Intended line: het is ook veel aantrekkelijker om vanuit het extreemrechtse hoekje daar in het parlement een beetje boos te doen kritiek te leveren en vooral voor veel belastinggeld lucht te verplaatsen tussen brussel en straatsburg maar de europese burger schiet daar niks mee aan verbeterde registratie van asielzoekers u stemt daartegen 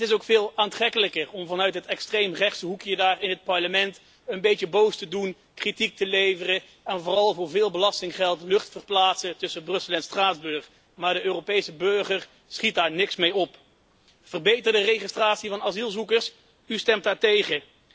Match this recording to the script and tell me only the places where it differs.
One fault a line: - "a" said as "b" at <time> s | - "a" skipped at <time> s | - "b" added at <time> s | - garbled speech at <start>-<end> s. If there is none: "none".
- "aan" said as "op" at 13.3 s